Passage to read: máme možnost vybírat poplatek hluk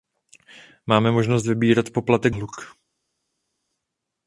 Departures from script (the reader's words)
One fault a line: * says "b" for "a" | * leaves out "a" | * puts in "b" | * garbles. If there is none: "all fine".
all fine